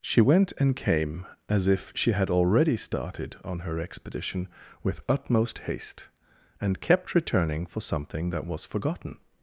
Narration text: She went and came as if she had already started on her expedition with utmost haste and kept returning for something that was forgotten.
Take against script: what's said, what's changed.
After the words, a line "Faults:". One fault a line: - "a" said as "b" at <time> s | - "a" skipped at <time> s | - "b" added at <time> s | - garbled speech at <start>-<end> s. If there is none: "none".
She went and came as if she had already started on her expedition with utmost haste and kept returning for something that was forgotten.
Faults:
none